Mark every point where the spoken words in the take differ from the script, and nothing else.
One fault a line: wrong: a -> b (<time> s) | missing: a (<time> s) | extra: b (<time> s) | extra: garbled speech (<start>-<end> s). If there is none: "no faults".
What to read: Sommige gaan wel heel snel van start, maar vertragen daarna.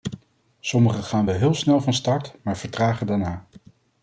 no faults